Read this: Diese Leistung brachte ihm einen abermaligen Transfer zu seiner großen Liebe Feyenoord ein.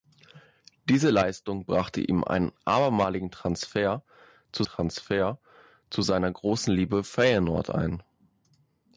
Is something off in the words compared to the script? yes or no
yes